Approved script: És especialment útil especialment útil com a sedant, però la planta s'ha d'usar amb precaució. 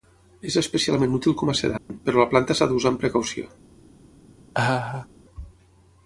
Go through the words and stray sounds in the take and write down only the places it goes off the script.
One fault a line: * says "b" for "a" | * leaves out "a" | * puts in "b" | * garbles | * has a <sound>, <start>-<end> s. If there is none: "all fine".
* leaves out "especialment útil"
* has a dropout, 1.8-1.9 s
* has a laugh, 4.5-5.1 s